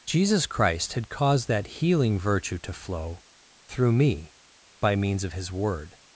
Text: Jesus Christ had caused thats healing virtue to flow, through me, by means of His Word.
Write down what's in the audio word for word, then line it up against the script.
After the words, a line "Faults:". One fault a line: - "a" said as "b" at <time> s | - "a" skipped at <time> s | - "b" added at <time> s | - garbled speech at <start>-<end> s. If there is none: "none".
Jesus Christ had caused that healing virtue to flow, through me, by means of His Word.
Faults:
- "thats" said as "that" at 1.5 s